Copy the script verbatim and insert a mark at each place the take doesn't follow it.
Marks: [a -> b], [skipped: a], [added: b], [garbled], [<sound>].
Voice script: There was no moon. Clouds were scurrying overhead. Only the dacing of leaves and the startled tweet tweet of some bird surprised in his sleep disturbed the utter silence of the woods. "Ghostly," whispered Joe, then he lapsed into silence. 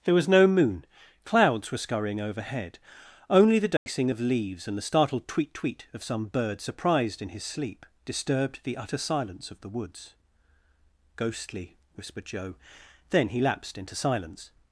There was no moon. Clouds were scurrying overhead. Only the dacing [dropout] of leaves and the startled tweet tweet of some bird surprised in his sleep disturbed the utter silence of the woods. "Ghostly," whispered Joe, then he lapsed into silence.